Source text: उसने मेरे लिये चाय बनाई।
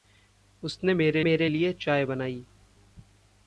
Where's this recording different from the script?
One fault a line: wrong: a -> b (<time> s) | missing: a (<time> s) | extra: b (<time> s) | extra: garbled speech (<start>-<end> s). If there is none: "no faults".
extra: मेरे (1.2 s)